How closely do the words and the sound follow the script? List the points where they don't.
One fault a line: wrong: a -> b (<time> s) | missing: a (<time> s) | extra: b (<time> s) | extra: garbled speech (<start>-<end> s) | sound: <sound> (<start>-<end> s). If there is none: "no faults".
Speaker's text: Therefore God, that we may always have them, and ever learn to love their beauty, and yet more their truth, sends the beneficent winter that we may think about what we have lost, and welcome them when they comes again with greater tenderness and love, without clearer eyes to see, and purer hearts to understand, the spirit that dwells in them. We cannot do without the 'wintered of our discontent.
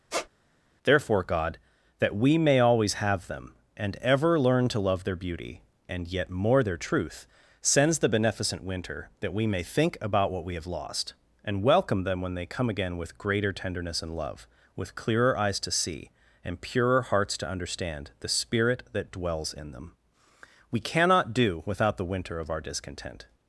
sound: squeak (0.1-0.3 s)
wrong: comes -> come (12.5 s)
wrong: without -> with (14.8 s)
wrong: wintered -> winter (22.1 s)